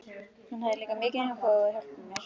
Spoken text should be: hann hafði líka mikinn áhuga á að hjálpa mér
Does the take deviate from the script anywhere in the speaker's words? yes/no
no